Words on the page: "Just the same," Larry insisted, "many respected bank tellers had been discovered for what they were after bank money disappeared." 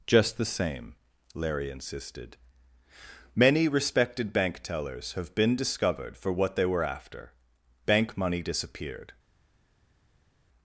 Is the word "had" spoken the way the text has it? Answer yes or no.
no